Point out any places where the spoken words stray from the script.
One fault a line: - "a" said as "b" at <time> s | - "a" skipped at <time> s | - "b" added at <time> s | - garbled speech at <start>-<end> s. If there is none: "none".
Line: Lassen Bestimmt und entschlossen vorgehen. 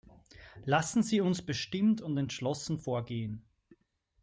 - "Sie uns" added at 1.0 s